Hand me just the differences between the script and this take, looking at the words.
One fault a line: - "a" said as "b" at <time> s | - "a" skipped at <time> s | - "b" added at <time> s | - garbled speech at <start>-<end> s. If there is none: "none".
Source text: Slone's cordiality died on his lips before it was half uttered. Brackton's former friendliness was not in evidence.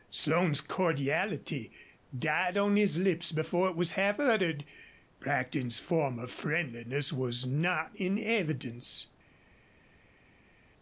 none